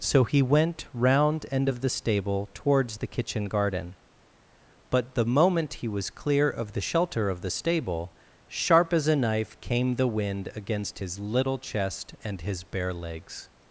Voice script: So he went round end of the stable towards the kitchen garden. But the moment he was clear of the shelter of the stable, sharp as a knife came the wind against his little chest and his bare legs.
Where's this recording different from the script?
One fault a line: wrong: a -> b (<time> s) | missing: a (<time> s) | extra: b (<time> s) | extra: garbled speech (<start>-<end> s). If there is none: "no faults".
no faults